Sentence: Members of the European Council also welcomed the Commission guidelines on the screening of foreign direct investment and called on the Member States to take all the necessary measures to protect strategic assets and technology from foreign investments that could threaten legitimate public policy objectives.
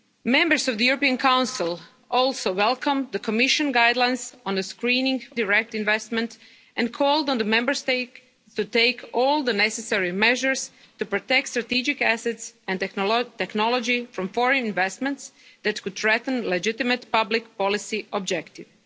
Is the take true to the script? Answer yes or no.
no